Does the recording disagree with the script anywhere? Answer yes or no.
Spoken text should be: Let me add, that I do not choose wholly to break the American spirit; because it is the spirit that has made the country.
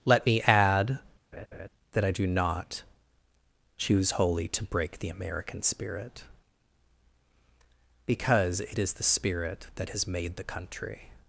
no